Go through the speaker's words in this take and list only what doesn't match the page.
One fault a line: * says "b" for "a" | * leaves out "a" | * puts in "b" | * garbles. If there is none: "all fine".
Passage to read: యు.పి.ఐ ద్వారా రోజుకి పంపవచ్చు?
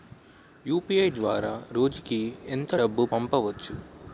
* puts in "ఎంత డబ్బు"